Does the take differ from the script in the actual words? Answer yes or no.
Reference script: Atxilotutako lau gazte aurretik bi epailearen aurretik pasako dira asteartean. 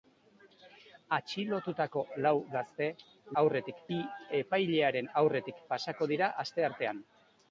no